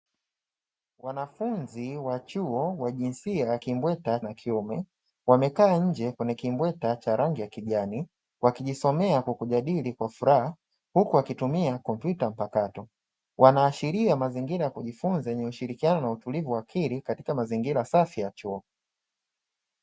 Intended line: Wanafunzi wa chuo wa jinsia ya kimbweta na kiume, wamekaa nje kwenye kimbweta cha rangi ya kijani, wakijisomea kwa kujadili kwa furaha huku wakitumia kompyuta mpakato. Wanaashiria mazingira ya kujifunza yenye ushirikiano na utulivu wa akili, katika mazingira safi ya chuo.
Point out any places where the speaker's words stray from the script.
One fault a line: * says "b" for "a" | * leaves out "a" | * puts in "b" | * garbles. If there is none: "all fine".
all fine